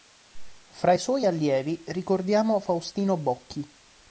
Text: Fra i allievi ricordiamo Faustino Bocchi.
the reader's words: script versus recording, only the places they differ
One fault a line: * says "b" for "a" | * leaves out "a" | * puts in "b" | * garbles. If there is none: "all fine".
* puts in "suoi"